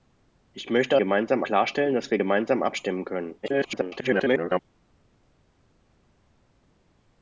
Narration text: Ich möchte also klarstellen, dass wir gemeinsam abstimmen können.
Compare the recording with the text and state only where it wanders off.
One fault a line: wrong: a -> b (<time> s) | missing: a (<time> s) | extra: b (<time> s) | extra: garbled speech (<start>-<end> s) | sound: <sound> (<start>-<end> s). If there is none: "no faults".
wrong: also -> gemeinsam (1.0 s)
extra: garbled speech (3.4-4.6 s)